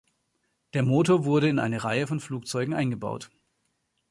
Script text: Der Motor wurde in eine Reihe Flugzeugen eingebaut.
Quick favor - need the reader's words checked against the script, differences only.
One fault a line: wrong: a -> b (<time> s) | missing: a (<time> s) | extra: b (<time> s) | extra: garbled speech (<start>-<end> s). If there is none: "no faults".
extra: von (2.1 s)